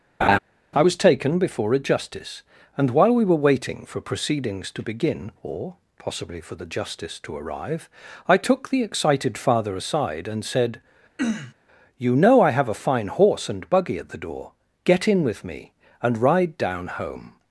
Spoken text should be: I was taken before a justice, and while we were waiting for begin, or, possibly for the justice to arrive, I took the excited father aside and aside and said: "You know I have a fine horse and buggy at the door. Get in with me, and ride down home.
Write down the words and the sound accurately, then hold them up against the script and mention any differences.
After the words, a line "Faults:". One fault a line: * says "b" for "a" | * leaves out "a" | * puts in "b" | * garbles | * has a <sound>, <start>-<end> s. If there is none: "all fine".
I was taken before a justice, and while we were waiting for proceedings to begin, or, possibly for the justice to arrive, I took the excited father aside and said: "You know I have a fine horse and buggy at the door. Get in with me, and ride down home.
Faults:
* has a laugh, 0.2-0.4 s
* puts in "proceedings to"
* leaves out "aside and"
* has a throat clearing, 11.2-11.5 s